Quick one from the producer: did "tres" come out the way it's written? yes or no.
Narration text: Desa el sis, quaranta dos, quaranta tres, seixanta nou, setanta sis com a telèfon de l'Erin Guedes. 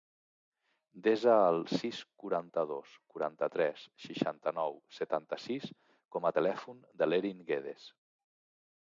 yes